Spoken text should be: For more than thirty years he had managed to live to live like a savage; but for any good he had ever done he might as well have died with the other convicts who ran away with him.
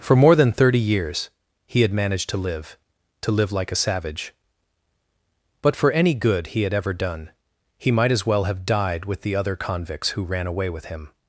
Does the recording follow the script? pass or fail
pass